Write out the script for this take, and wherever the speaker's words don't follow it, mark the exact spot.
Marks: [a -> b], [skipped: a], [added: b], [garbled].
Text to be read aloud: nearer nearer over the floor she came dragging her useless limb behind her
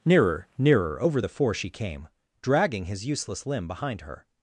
nearer nearer over the [floor -> four] she came dragging [her -> his] useless limb behind her